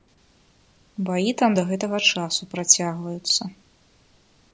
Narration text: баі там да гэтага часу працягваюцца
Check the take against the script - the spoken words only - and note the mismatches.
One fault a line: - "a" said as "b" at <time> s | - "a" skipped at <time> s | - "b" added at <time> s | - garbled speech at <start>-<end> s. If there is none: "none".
none